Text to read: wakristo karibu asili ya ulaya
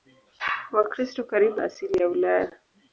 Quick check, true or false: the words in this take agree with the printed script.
true